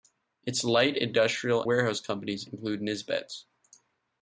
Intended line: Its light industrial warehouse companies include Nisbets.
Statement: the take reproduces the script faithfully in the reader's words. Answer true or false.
true